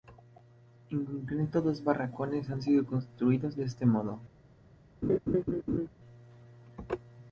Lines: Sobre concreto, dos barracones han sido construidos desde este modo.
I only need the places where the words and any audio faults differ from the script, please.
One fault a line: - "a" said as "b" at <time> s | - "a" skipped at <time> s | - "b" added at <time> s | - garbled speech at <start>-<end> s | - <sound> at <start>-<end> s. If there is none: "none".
- "Sobre" said as "En" at 0.9 s
- "desde" said as "de" at 3.5 s
- laugh at 5.0-5.9 s